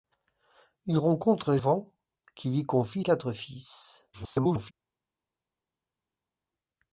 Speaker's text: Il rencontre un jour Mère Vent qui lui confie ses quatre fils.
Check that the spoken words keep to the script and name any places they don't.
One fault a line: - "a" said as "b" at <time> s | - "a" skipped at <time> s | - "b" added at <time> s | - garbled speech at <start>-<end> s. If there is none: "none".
- "jour Mère" skipped at 1.6 s
- "ses" skipped at 3.1 s
- garbled speech at 4.1-4.7 s